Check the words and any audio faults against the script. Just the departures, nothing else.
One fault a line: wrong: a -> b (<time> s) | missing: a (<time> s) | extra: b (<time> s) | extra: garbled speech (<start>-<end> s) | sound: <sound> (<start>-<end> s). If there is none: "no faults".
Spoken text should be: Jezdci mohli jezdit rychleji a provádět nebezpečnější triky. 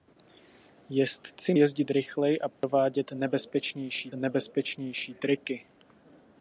missing: mohli (1.5 s)
sound: dropout (2.6-2.6 s)
extra: nebezpečnější (4.1 s)